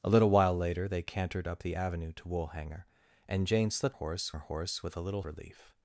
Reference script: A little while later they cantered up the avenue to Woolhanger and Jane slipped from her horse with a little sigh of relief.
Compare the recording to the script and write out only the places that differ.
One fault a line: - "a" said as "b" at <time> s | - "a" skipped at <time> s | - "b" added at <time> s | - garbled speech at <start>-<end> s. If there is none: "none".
- "from" said as "horse" at 3.9 s
- "sigh of" skipped at 5.2 s